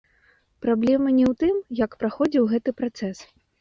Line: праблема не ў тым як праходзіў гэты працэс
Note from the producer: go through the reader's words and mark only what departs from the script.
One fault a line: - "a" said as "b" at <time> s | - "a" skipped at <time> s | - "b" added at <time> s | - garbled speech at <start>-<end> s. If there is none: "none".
none